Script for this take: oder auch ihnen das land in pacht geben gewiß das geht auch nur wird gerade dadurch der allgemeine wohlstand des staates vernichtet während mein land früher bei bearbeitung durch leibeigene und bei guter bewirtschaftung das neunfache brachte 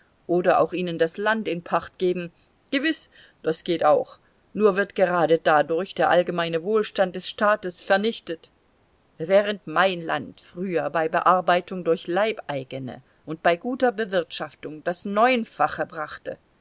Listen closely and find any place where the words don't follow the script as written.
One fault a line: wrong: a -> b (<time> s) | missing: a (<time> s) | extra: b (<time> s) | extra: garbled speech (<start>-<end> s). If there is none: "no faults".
no faults